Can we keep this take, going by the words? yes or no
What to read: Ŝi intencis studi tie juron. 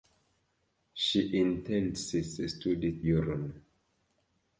no